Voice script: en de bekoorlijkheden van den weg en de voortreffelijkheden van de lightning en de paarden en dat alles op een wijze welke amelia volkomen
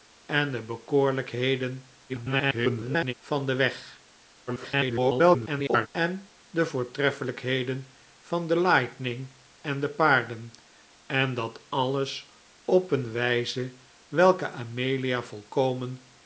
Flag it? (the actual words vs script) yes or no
yes